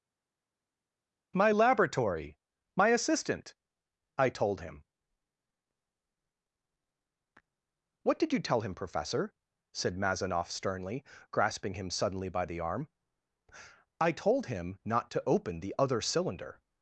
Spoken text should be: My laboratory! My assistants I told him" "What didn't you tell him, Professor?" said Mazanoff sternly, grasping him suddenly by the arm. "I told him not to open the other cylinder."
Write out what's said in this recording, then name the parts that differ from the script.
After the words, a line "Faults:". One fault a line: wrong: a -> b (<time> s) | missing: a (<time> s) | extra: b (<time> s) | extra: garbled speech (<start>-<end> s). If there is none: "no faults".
My laboratory! My assistant I told him" "What did you tell him, Professor?" said Mazanoff sternly, grasping him suddenly by the arm. "I told him not to open the other cylinder."
Faults:
wrong: assistants -> assistant (2.9 s)
wrong: didn't -> did (8.2 s)